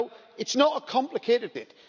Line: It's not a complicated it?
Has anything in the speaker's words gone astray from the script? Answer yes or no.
no